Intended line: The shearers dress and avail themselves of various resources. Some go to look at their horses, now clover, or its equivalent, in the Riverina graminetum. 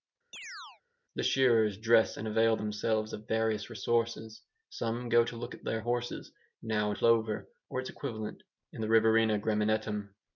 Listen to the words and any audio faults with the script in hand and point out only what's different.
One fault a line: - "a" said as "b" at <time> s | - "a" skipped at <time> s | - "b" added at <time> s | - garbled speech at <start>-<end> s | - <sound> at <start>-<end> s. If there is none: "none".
- chirp at 0.3-0.8 s